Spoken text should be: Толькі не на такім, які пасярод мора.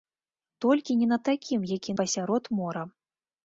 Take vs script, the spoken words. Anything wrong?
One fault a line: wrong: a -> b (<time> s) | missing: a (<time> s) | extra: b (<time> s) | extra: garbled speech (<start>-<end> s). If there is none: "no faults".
no faults